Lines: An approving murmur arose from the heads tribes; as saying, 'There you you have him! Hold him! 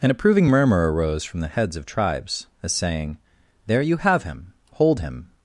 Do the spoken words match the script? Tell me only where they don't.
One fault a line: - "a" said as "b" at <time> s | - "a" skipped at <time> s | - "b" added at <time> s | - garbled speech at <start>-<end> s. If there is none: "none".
- "of" added at 1.7 s
- "you" skipped at 4.0 s